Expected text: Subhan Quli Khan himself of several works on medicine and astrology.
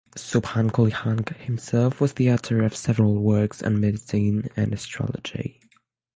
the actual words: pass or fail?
fail